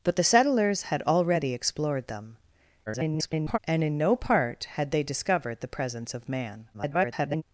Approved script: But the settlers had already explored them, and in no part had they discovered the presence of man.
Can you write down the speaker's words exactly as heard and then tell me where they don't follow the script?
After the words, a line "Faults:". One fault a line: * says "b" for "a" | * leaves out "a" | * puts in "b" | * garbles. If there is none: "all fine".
But the settlers had already explored them, [garbled] and in no part had they discovered the presence of man. [garbled]
Faults:
* garbles
* garbles